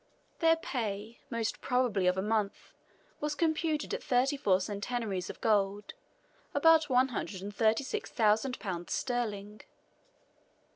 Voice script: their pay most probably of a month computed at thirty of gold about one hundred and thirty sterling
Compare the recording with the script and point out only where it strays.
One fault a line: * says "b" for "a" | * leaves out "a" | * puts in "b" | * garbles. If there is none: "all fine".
* puts in "was"
* puts in "four centenaries"
* puts in "six thousand pounds"